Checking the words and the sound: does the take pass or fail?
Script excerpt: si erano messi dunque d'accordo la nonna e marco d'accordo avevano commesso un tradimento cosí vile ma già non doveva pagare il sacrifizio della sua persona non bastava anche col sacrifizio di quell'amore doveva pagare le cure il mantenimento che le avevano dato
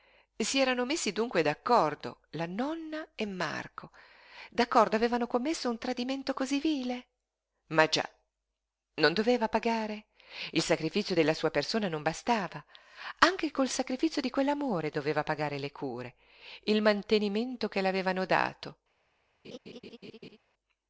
fail